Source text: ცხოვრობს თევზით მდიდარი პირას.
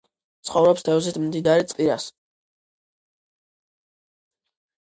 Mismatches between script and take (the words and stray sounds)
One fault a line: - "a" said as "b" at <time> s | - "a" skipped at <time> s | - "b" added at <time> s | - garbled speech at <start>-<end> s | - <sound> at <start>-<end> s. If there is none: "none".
none